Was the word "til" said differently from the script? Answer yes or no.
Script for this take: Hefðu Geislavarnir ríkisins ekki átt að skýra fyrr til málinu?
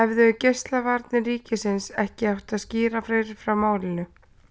yes